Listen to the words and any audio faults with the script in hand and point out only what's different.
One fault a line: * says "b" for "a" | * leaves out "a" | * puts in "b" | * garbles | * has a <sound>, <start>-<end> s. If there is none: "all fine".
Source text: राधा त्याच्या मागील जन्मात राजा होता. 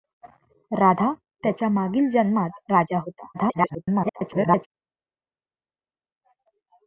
* garbles